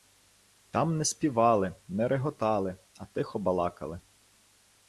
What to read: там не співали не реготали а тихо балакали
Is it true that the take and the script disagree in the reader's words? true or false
false